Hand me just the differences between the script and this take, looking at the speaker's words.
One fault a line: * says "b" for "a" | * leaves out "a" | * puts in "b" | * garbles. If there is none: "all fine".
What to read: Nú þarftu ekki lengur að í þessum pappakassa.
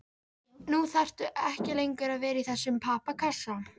* puts in "vera"